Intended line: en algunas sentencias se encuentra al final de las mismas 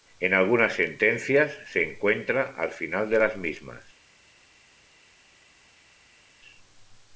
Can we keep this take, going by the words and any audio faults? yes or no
yes